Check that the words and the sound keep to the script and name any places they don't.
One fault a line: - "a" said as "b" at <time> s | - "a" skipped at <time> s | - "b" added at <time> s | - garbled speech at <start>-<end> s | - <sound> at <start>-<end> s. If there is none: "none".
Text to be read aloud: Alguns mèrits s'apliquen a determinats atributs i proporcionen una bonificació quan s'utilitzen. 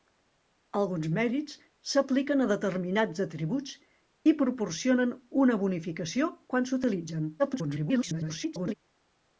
- garbled speech at 7.4-8.7 s